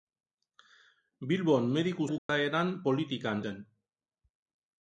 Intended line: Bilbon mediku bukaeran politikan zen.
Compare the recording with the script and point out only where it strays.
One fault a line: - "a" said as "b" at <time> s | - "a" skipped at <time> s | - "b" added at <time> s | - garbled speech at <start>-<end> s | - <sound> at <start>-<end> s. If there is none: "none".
- dropout at 2.2-2.3 s